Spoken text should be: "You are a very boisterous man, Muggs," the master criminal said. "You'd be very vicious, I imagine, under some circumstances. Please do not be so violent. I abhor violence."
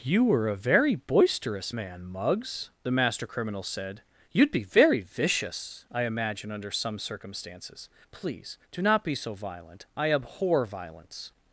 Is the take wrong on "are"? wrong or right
wrong